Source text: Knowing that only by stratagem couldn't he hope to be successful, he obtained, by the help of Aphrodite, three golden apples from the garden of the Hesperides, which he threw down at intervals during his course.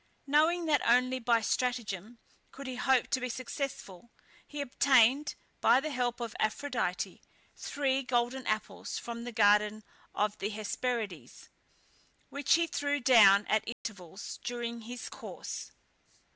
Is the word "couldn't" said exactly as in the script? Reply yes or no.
no